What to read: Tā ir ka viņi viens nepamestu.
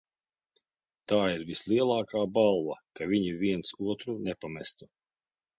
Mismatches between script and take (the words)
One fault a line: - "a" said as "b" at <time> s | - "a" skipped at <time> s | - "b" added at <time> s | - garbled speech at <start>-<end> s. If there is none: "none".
- "vislielākā balva" added at 1.5 s
- "otru" added at 3.9 s